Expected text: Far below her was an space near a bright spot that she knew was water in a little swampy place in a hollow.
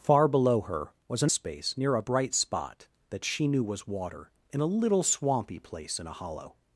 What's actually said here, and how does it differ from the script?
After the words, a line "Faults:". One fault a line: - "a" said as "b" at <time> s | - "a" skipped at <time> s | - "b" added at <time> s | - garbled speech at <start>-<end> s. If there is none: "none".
Far below her was an space near a bright spot that she knew was water in a little swampy place in a hollow.
Faults:
none